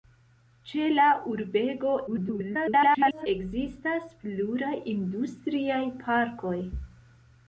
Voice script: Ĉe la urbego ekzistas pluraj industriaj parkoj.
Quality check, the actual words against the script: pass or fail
fail